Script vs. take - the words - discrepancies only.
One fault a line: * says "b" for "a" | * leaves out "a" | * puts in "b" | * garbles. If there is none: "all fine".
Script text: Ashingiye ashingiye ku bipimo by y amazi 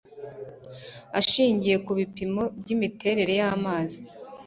* leaves out "ashingiye"
* puts in "imiterere"